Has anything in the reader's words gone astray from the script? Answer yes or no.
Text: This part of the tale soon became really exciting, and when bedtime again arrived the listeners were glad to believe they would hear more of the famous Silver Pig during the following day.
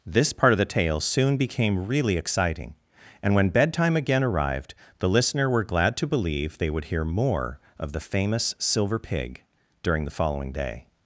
yes